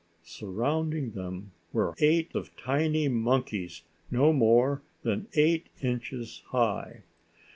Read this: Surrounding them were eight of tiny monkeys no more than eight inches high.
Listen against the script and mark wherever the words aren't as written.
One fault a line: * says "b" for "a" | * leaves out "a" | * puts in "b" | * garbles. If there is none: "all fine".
all fine